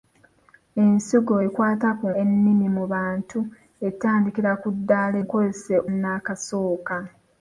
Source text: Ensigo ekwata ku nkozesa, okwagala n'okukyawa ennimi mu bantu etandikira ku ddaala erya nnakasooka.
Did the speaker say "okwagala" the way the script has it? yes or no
no